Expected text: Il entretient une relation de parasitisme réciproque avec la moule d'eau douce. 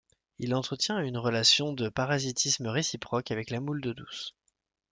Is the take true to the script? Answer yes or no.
yes